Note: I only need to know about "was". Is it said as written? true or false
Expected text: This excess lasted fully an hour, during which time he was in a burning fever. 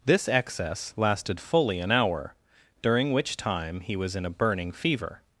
true